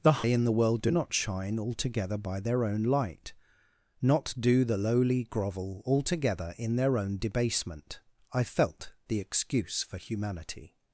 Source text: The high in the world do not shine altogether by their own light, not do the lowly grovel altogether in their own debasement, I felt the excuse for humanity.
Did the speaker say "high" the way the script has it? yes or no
no